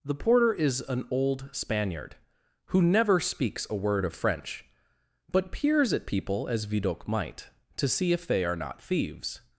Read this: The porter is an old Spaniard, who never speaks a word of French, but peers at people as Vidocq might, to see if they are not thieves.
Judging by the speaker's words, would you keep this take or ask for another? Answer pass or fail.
pass